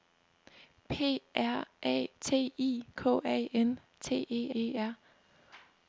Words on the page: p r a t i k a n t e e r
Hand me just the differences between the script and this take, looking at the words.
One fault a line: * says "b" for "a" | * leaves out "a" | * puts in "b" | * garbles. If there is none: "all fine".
all fine